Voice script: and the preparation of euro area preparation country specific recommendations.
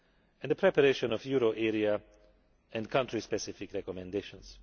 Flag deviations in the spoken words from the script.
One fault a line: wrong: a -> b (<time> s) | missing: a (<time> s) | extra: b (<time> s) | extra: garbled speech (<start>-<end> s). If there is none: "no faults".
wrong: preparation -> and (2.7 s)